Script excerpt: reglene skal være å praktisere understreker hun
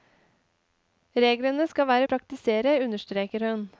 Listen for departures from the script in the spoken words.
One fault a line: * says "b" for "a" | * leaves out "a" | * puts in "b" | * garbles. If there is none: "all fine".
all fine